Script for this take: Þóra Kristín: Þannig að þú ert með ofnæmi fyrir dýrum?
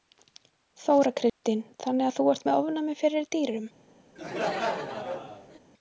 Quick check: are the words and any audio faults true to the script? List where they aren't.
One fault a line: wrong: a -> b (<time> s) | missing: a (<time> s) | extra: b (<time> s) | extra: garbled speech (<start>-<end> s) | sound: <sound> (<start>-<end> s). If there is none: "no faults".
sound: dropout (1.3-1.4 s)
sound: laugh (4.2-5.6 s)